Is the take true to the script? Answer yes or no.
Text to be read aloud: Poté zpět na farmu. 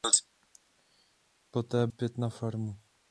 yes